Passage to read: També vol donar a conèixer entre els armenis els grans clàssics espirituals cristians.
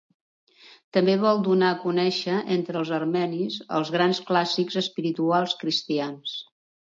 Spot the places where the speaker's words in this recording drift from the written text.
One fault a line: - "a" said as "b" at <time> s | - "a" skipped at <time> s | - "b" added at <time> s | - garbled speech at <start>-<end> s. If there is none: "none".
none